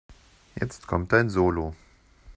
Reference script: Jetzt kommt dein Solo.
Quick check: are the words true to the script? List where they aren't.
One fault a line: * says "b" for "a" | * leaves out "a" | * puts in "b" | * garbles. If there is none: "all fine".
all fine